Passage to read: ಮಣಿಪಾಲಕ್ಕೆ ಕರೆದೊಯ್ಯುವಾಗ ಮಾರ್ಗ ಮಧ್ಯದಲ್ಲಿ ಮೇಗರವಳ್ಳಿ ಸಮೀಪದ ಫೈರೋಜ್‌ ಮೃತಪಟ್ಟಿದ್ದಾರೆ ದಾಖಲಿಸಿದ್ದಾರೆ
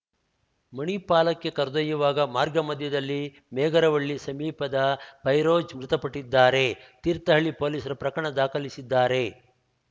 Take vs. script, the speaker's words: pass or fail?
fail